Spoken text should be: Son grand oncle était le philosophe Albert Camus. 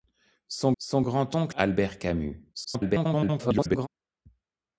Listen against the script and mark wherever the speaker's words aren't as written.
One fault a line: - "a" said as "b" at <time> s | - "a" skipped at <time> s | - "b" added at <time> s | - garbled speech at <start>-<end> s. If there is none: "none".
- "son" added at 0.8 s
- "était le philosophe" skipped at 1.6 s
- garbled speech at 2.5-3.9 s